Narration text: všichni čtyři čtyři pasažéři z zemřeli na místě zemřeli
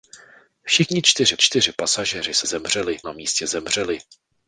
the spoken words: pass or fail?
pass